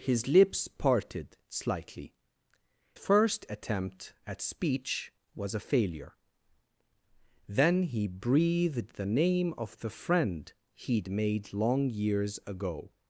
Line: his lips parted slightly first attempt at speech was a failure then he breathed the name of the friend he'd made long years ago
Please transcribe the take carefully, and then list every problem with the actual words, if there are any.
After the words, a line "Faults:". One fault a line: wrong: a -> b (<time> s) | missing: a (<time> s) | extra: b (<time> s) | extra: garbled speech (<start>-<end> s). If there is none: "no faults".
his lips parted slightly first attempt at speech was a failure then he breathed the name of the friend he'd made long years ago
Faults:
no faults